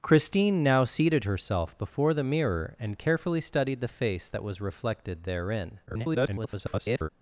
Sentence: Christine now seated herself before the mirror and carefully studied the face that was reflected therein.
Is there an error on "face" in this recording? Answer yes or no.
no